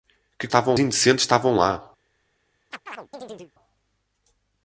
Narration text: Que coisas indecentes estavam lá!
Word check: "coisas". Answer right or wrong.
wrong